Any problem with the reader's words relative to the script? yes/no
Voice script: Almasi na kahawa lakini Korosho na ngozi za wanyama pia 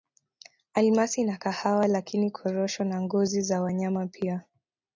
no